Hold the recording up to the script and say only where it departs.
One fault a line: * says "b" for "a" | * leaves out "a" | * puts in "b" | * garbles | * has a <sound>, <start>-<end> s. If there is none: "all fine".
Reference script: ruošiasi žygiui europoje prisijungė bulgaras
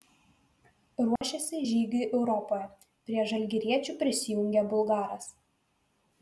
* has a dropout, 1.2-1.2 s
* puts in "prie žalgiriečių"